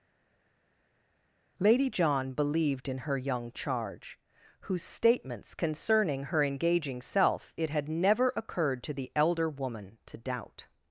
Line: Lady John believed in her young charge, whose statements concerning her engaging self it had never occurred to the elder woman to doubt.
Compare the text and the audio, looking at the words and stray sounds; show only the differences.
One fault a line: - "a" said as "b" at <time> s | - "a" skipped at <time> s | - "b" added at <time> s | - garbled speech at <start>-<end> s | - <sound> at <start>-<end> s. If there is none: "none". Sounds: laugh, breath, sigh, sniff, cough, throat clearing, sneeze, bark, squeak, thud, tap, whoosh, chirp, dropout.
none